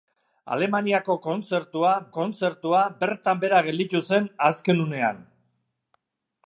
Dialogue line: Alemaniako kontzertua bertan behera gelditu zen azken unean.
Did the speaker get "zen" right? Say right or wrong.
right